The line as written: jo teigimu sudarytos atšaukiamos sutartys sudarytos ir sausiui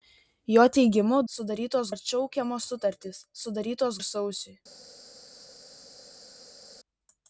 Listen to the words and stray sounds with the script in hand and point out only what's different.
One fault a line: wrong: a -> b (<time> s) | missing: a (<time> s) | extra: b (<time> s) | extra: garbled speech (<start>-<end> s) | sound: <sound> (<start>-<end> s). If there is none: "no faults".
no faults